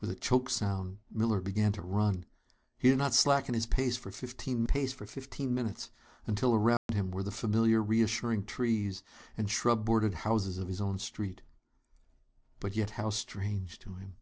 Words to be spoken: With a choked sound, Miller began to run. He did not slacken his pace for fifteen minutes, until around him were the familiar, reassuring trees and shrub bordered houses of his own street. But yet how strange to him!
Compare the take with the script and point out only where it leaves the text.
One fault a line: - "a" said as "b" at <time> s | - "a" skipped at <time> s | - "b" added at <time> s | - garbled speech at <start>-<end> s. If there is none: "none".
- "pace for fifteen" added at 4.6 s